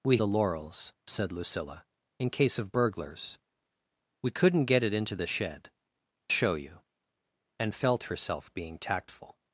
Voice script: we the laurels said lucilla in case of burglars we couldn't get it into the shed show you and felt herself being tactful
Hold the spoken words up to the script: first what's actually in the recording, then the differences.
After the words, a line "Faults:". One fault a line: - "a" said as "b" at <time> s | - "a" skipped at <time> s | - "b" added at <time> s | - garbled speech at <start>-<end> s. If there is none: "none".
we the laurels said lucilla in case of burglars we couldn't get it into the shed show you and felt herself being tactful
Faults:
none